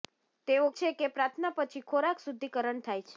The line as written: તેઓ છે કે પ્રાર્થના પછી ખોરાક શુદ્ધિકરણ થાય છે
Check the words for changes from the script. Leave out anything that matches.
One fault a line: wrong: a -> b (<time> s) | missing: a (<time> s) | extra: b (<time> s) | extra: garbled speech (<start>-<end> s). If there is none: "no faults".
no faults